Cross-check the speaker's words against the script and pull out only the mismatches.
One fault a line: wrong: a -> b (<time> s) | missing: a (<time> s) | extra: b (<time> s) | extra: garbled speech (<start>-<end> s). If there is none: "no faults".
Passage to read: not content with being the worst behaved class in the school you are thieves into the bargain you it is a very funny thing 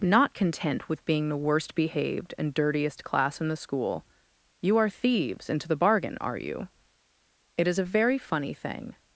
extra: and dirtiest (2.4 s)
extra: are (6.2 s)